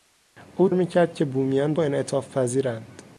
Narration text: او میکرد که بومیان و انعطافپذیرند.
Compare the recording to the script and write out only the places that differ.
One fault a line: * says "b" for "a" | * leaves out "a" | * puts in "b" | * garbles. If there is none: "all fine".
all fine